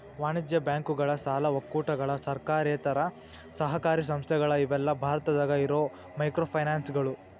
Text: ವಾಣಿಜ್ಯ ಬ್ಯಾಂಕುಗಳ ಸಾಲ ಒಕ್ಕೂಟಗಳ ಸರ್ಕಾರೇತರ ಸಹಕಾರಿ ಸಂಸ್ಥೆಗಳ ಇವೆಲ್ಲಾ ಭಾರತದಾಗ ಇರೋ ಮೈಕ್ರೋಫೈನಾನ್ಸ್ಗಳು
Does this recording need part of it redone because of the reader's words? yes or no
no